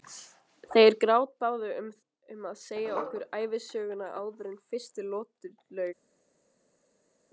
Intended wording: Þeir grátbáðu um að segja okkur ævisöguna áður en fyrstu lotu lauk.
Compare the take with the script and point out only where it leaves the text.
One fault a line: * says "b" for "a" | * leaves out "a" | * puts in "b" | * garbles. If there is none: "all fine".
all fine